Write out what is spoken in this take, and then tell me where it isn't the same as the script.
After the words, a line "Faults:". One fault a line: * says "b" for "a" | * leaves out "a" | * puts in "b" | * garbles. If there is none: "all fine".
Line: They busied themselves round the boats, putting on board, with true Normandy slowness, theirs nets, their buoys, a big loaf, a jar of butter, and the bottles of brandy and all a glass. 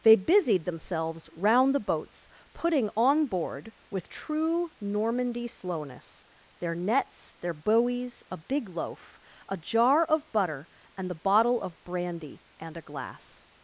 They busied themselves round the boats, putting on board, with true Normandy slowness, their nets, their buoys, a big loaf, a jar of butter, and the bottle of brandy and a glass.
Faults:
* says "their" for "theirs"
* says "bottle" for "bottles"
* leaves out "all"